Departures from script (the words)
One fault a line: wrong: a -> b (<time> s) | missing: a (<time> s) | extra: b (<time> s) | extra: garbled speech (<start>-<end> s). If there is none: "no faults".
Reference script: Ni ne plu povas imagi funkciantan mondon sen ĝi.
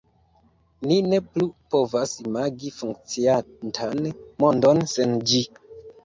no faults